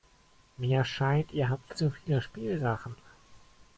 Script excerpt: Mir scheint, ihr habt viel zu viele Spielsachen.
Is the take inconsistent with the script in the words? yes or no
yes